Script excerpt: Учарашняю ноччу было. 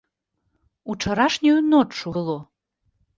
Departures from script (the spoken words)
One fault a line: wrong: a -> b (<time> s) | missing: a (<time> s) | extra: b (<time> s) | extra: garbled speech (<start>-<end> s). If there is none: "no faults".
no faults